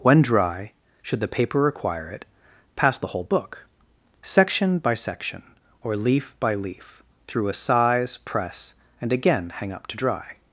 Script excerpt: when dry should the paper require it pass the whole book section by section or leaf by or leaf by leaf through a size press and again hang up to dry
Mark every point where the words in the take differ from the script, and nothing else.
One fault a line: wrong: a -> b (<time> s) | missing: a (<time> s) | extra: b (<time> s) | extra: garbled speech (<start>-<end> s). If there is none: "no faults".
missing: or leaf by (6.5 s)